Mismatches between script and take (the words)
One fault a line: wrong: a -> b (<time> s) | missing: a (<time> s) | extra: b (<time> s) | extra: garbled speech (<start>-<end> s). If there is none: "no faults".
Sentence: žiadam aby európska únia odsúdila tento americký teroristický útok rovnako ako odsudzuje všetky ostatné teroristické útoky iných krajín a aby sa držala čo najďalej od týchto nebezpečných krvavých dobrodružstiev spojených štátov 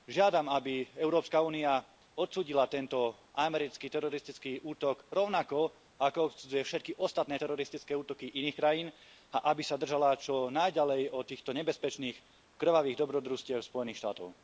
no faults